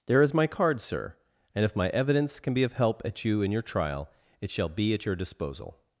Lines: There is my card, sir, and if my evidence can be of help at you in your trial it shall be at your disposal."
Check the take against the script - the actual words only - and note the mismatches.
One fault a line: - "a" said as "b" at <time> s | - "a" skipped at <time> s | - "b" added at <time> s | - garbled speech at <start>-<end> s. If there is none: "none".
none